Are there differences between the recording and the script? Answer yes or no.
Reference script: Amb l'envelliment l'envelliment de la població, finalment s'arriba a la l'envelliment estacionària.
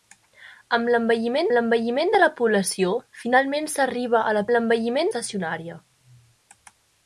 no